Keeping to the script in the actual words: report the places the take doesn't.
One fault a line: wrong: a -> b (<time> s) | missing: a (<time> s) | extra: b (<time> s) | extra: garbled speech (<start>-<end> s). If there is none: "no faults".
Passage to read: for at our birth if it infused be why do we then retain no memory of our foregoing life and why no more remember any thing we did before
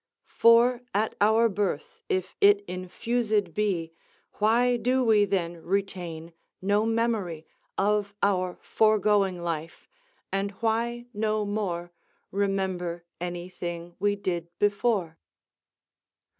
no faults